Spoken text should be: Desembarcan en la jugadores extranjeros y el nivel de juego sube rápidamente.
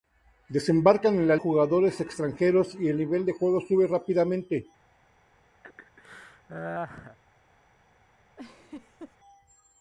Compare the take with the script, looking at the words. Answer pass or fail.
pass